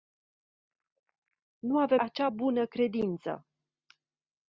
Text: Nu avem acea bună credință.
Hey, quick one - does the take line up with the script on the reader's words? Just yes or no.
yes